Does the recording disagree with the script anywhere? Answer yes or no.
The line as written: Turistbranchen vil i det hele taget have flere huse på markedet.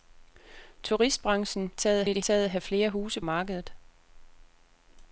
yes